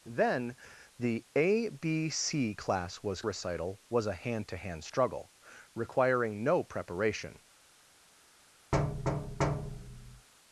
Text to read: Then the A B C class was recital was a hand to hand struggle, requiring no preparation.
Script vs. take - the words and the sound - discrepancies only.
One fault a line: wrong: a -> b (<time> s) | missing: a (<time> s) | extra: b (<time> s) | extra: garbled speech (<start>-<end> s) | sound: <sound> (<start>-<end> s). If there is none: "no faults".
sound: thud (8.7-10.3 s)